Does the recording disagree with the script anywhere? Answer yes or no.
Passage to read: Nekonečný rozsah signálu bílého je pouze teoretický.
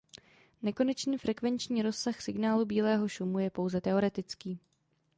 yes